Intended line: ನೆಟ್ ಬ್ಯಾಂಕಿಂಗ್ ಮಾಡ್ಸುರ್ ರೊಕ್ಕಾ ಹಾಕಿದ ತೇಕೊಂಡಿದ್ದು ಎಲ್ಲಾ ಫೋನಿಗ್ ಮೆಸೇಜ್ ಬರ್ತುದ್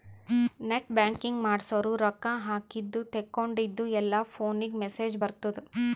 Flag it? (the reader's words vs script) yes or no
no